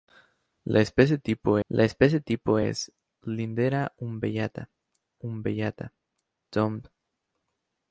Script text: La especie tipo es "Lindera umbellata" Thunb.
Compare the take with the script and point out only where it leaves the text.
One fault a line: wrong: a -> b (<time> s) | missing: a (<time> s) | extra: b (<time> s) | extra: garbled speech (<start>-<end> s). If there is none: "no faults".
extra: la especie tipo (1.7 s)
extra: umbellata (5.2 s)